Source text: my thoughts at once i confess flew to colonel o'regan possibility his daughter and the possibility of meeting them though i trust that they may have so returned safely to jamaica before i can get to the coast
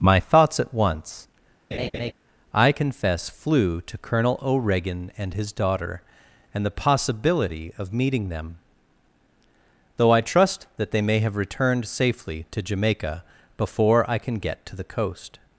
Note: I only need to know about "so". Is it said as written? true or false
false